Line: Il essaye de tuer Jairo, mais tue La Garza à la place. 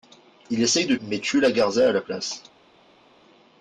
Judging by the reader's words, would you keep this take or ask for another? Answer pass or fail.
fail